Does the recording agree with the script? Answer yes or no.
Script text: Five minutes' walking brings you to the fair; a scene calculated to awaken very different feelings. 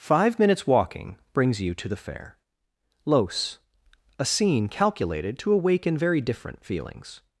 no